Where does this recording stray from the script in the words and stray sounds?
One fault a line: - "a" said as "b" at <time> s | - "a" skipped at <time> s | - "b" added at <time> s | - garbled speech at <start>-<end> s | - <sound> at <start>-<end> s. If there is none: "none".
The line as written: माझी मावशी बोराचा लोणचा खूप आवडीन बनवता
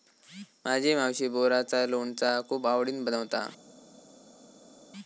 none